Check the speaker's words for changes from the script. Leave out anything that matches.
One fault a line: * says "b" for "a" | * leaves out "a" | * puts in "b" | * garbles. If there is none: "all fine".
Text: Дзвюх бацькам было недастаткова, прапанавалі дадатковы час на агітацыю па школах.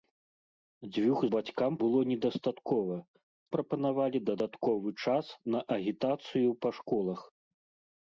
all fine